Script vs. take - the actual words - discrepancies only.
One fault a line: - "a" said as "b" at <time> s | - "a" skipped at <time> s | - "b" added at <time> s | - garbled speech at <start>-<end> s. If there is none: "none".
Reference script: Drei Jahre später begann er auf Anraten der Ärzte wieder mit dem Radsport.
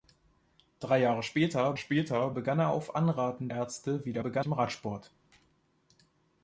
- "später" added at 1.7 s
- "der" skipped at 3.5 s
- "mit" said as "begann" at 4.2 s